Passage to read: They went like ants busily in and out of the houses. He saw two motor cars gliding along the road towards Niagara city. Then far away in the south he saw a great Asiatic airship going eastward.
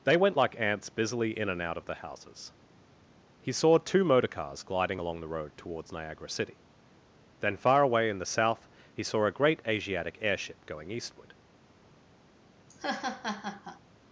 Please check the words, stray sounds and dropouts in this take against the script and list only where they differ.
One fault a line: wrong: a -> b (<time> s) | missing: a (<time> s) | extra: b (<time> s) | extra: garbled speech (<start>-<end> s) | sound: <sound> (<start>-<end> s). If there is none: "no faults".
sound: laugh (12.7-13.8 s)